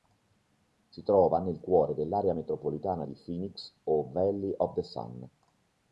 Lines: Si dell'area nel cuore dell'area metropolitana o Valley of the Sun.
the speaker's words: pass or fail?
fail